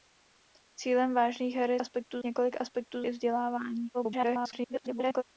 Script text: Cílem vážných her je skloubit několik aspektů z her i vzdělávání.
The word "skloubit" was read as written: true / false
false